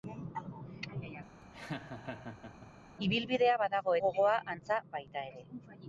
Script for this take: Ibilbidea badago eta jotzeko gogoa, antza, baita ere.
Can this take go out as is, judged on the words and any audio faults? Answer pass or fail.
fail